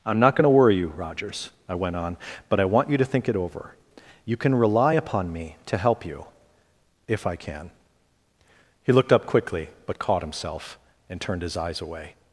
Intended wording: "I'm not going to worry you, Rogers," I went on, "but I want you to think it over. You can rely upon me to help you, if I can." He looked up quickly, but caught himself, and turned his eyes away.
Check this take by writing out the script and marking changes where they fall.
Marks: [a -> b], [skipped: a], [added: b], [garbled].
"I'm not going to worry you, Rogers," I went on, "but I want you to think it over. You can rely upon me to help you, if I can." He looked up quickly, but caught himself, and turned his eyes away.